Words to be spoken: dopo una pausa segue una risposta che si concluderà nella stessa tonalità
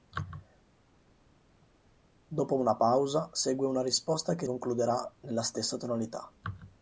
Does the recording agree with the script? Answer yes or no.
no